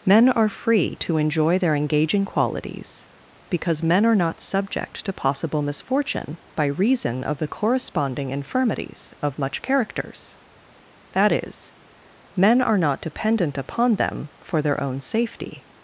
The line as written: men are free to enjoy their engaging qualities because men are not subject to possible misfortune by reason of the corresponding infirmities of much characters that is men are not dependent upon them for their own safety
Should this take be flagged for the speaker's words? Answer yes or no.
no